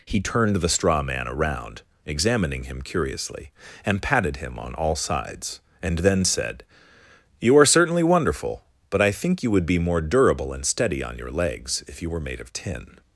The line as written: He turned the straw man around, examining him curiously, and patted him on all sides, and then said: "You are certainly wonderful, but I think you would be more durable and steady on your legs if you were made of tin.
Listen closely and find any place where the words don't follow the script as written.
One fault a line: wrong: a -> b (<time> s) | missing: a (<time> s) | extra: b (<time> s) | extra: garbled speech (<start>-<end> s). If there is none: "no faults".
no faults